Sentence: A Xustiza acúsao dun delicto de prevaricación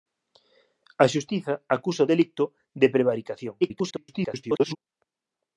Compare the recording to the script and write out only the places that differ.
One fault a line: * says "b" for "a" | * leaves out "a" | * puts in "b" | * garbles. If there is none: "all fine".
* leaves out "dun"
* garbles